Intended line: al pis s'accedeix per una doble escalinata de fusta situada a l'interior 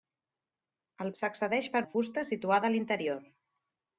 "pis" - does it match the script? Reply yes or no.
no